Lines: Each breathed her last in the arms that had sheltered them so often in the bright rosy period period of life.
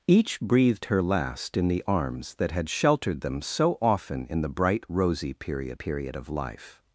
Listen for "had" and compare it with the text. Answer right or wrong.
right